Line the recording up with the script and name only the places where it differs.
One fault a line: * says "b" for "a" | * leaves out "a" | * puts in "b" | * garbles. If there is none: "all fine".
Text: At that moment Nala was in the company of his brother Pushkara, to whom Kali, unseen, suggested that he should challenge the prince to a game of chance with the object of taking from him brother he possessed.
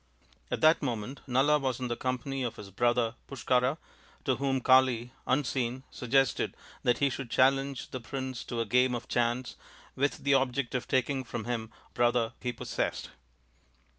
all fine